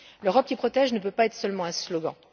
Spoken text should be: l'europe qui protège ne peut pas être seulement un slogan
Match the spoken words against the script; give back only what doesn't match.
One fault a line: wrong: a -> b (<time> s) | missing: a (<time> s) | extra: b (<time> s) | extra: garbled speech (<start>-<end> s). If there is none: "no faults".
no faults